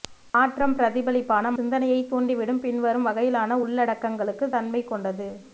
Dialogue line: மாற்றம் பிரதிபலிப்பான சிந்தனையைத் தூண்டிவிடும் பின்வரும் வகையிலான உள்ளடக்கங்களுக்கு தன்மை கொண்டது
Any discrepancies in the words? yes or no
no